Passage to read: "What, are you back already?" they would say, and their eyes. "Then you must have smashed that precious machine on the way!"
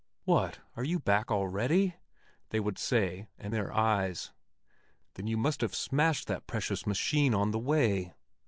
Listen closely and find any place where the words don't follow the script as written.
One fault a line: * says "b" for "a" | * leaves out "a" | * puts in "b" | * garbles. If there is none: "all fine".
all fine